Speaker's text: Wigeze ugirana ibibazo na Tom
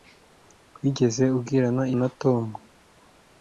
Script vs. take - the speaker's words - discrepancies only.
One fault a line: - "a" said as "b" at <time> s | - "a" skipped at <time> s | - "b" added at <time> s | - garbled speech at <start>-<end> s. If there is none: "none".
- "ibibazo" skipped at 1.8 s